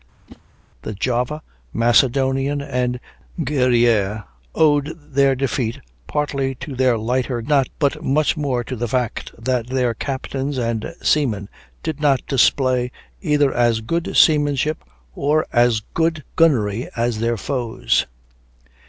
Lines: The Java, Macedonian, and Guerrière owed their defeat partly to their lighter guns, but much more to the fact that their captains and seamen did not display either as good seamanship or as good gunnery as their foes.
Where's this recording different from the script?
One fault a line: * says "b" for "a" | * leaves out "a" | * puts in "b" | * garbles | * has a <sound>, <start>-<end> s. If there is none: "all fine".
* has a whoosh, 0.3-0.4 s
* says "not" for "guns"